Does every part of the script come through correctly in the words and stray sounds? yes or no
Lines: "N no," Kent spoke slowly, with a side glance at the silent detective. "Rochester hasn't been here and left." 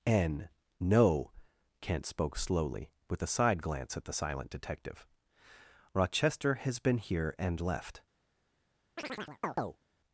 no